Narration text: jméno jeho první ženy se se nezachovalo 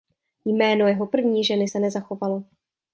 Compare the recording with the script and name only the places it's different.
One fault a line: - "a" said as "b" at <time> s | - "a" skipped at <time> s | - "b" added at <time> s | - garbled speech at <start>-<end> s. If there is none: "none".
- "se" skipped at 1.8 s